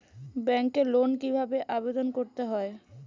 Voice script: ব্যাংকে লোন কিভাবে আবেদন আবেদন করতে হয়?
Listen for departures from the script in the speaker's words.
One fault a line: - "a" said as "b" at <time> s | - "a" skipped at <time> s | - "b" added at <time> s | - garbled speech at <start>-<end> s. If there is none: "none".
- "আবেদন" skipped at 2.1 s